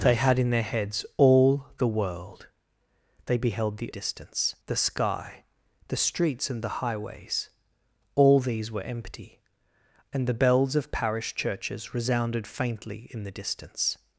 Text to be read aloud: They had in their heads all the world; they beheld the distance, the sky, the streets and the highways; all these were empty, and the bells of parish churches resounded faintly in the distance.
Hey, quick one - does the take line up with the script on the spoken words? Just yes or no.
yes